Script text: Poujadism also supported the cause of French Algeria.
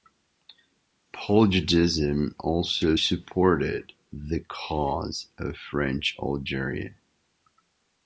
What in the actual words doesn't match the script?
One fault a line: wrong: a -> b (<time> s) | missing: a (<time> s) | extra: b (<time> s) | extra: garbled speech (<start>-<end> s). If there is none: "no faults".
no faults